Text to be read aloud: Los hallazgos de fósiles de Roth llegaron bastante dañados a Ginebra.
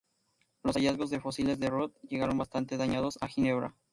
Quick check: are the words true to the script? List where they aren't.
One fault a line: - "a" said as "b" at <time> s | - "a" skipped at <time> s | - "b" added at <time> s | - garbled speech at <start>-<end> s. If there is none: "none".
none